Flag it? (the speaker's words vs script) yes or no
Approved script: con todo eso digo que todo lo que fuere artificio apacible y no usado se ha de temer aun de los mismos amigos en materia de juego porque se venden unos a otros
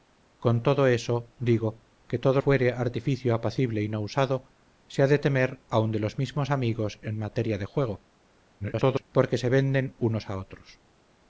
yes